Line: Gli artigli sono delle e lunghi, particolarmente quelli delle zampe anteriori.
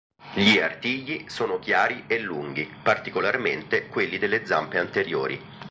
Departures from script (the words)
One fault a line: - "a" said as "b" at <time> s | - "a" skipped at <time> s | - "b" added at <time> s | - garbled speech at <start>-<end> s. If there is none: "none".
- "delle" said as "chiari" at 1.6 s